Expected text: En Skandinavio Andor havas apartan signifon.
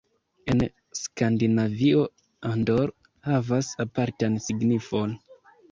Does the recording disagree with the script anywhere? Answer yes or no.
no